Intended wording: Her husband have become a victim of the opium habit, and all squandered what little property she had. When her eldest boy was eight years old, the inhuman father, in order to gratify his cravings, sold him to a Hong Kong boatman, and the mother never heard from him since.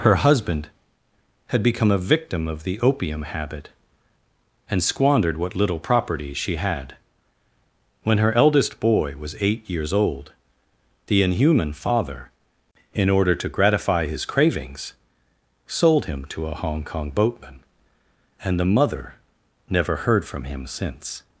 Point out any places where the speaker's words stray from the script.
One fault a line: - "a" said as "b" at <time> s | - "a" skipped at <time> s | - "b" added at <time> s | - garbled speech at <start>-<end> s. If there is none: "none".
- "have" said as "had" at 1.5 s
- "all" skipped at 4.8 s